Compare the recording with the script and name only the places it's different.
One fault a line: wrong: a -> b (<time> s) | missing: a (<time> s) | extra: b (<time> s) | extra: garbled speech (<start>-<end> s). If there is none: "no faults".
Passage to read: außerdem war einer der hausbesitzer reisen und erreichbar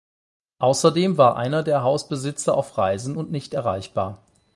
extra: auf (2.5 s)
extra: nicht (3.3 s)